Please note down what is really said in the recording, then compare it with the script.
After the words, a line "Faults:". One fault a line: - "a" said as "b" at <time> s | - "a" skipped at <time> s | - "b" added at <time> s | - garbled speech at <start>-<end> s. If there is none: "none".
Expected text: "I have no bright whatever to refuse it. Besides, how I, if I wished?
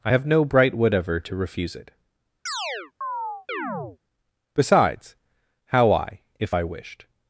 "I have no bright whatever to refuse it. Besides, how I, if I wished?
Faults:
none